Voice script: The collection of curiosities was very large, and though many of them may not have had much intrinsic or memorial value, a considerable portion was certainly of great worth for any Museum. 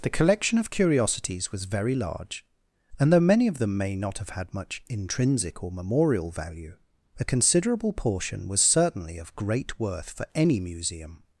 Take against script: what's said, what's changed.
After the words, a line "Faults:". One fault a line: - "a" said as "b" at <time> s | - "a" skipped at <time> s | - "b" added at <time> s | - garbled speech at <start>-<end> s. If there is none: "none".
The collection of curiosities was very large, and though many of them may not have had much intrinsic or memorial value, a considerable portion was certainly of great worth for any Museum.
Faults:
none